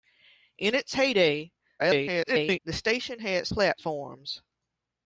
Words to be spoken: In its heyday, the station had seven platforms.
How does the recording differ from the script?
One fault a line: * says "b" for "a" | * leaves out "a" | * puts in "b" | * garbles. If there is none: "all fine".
* garbles
* leaves out "seven"